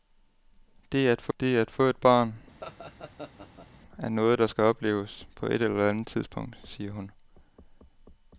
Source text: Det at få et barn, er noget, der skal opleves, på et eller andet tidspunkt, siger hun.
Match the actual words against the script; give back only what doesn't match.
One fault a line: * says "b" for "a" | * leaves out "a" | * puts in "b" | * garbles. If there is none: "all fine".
* puts in "det at få"